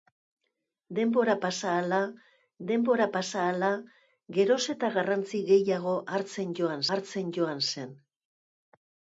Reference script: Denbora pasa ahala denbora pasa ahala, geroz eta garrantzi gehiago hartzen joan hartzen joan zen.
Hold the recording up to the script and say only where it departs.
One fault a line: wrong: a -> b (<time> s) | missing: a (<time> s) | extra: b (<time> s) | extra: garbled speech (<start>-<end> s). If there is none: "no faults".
no faults